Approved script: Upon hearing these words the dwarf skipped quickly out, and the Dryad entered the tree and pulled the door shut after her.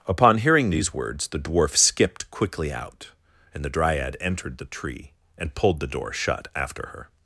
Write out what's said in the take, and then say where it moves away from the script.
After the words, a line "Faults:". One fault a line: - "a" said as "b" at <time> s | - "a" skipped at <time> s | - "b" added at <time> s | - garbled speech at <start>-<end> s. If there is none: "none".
Upon hearing these words the dwarf skipped quickly out, and the Dryad entered the tree and pulled the door shut after her.
Faults:
none